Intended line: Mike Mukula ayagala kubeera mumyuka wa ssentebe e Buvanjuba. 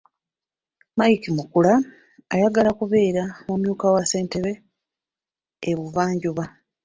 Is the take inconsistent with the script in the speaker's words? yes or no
no